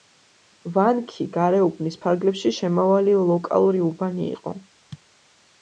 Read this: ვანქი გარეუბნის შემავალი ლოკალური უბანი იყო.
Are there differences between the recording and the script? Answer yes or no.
yes